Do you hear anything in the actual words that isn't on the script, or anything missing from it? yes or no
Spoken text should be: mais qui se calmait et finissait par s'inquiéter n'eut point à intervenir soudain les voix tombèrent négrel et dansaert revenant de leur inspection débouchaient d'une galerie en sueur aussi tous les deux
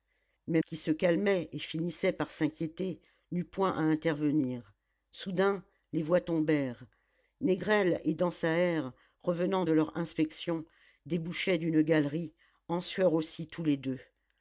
no